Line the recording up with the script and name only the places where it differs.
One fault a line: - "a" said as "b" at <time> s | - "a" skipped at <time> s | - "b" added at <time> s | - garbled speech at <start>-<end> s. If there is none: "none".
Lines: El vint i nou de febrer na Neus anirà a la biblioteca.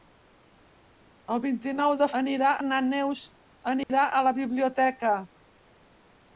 - "febrer" said as "anirà" at 2.2 s